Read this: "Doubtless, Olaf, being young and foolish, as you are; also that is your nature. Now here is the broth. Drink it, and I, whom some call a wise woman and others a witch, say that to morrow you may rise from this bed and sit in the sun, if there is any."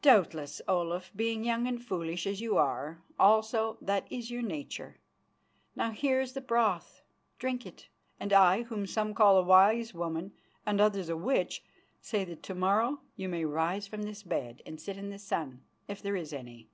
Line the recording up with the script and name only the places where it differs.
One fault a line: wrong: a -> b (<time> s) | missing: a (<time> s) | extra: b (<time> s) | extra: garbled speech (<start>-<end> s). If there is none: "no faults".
no faults